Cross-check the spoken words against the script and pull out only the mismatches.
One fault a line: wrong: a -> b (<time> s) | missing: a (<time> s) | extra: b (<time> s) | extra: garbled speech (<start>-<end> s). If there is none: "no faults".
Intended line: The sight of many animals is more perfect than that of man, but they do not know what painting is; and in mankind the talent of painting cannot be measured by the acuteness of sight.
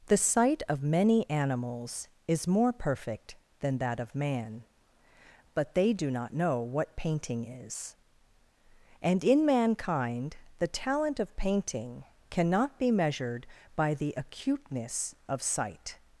no faults